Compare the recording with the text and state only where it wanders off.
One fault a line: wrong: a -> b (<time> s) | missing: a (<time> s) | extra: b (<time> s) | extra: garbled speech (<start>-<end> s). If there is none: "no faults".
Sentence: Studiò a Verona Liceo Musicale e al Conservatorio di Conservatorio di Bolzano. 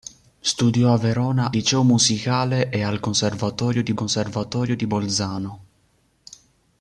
no faults